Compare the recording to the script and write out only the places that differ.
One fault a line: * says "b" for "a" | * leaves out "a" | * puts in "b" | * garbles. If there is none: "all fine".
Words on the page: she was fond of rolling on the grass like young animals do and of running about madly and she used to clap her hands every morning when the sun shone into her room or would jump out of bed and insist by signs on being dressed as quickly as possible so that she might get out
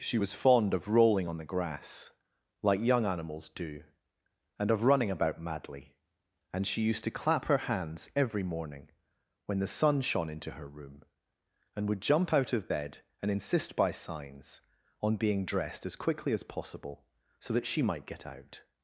* says "and" for "or"